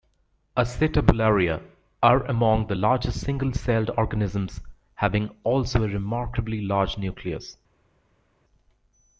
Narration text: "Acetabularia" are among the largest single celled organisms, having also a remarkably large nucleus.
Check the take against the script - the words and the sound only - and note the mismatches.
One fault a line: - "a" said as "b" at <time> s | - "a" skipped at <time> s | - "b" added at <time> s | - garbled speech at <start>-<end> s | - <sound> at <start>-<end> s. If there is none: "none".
none